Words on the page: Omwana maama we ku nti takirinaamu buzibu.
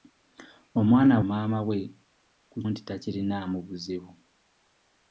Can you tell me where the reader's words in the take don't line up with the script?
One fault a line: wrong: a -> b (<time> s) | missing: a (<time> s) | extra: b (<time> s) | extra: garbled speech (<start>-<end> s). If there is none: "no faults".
no faults